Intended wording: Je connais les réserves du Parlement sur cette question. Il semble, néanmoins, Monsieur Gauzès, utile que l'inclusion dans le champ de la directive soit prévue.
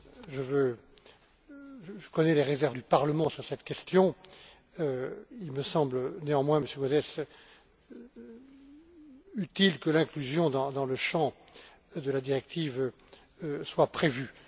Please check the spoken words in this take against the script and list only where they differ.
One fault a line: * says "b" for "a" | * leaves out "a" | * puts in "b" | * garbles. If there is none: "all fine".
* puts in "me"